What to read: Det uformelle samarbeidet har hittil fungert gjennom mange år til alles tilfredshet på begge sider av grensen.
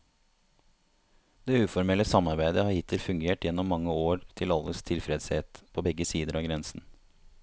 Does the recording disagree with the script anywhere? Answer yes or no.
no